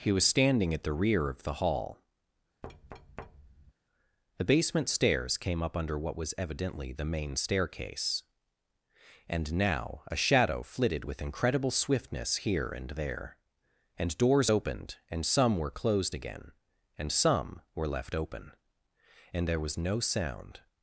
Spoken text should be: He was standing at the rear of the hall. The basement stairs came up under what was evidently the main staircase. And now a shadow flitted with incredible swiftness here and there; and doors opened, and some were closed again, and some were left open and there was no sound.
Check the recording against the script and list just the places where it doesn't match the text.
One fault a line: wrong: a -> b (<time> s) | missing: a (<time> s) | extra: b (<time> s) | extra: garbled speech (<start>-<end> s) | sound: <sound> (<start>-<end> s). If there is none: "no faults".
sound: thud (2.6-3.7 s)